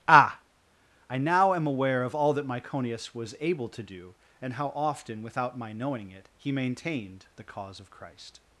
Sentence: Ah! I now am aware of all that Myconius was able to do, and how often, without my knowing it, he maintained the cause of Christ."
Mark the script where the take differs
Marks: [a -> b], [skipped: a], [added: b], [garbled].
Ah! I now am aware of all that Myconius was able to do, and how often, without my knowing it, he maintained the cause of Christ."